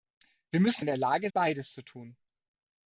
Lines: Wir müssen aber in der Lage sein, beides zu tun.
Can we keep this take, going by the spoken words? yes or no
no